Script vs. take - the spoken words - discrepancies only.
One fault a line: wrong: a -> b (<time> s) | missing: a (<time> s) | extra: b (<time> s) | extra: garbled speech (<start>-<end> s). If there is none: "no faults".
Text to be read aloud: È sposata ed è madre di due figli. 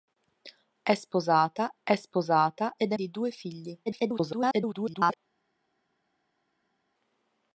extra: è sposata (1.8 s)
missing: madre (3.0 s)
extra: garbled speech (3.9-5.2 s)